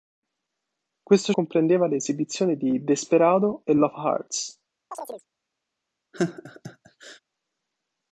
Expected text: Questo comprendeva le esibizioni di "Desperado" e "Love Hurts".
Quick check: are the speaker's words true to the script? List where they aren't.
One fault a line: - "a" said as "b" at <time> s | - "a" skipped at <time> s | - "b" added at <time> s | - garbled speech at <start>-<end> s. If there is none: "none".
none